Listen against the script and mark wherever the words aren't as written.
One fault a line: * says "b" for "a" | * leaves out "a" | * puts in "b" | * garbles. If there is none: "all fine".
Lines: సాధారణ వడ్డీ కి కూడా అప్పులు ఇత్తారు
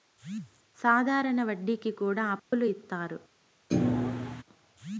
all fine